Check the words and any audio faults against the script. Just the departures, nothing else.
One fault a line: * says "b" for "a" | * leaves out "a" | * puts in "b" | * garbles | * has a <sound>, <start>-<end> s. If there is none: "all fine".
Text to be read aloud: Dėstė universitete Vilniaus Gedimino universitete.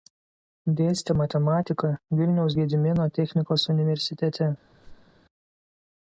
* says "matematiką" for "universitete"
* puts in "technikos"
* has a squeak, 4.6-5.2 s